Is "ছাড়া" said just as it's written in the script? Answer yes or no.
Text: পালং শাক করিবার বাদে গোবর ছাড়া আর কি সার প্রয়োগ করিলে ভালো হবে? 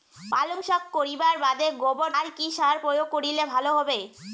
no